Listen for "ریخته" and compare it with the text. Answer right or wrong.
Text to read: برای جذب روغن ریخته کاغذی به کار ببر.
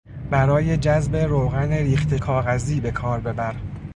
right